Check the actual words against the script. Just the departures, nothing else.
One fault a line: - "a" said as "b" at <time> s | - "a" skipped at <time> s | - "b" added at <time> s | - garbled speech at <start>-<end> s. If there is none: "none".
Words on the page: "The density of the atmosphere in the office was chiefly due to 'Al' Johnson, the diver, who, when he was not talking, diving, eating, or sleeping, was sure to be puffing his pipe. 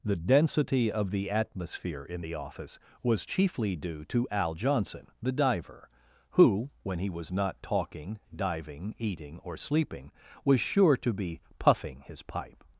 none